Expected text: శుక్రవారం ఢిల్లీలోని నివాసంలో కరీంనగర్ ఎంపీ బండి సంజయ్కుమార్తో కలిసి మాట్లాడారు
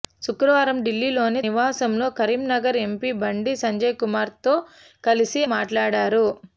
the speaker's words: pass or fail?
pass